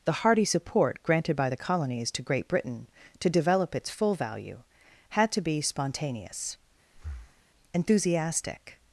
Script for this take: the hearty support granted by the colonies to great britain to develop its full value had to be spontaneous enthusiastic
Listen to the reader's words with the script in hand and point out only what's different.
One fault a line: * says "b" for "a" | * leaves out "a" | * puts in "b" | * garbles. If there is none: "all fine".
all fine